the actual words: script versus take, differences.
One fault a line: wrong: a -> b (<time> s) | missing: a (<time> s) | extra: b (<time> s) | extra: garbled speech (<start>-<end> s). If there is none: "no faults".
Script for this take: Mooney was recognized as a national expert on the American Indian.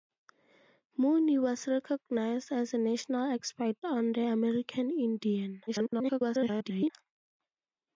extra: garbled speech (5.7-6.9 s)